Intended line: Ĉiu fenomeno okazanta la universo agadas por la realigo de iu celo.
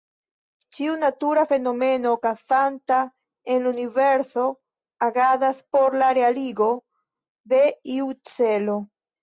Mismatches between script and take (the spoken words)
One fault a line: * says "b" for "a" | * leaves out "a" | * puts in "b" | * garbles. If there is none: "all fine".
* puts in "natura"
* puts in "en"